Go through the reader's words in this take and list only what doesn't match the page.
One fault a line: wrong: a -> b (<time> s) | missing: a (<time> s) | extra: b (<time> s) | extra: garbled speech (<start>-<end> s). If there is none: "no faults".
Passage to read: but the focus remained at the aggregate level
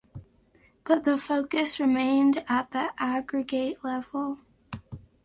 no faults